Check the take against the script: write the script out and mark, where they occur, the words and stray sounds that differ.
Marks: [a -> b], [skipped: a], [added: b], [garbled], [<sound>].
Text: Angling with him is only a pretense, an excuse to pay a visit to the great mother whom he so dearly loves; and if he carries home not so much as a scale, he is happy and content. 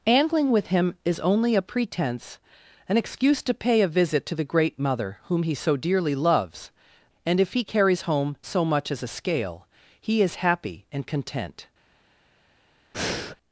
Angling with him is only a pretense, an excuse to pay a visit to the great mother whom he so dearly loves; and if he carries home [skipped: not] so much as a scale, he is happy and content. [breath]